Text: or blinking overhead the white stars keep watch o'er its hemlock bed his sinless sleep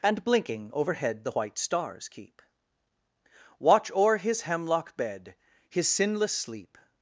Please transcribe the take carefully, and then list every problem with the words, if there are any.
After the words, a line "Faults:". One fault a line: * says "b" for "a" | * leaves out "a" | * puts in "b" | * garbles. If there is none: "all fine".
and blinking overhead the white stars keep watch o'er his hemlock bed his sinless sleep
Faults:
* says "and" for "or"
* says "his" for "its"